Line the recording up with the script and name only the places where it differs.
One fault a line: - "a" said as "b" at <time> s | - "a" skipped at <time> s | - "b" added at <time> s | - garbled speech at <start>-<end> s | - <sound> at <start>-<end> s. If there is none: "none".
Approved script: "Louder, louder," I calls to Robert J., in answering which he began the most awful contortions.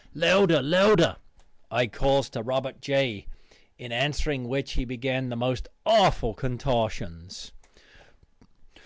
none